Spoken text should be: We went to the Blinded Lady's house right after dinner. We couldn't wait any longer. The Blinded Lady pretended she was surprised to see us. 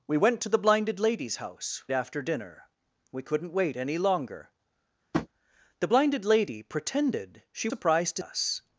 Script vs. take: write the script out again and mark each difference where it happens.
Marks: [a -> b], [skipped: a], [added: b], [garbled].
We went to the Blinded Lady's house [skipped: right] after dinner. We couldn't wait any longer. The Blinded Lady pretended she [skipped: was] surprised to [skipped: see] us.